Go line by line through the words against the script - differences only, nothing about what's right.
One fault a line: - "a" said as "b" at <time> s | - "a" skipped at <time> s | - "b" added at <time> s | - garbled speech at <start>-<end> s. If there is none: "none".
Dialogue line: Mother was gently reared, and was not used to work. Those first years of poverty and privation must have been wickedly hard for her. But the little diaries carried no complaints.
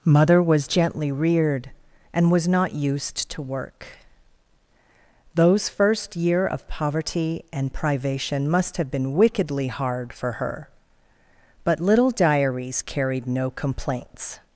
- "years" said as "year" at 6.1 s
- "the" skipped at 11.8 s